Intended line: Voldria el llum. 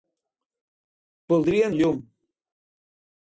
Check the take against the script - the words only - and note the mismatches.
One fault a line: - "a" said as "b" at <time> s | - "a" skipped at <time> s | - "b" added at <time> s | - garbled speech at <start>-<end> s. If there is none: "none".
none